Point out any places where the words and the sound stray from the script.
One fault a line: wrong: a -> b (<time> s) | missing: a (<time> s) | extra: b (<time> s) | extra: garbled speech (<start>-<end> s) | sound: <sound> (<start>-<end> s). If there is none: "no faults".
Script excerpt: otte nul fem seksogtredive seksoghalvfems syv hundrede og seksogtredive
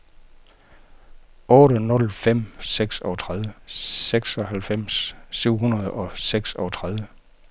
no faults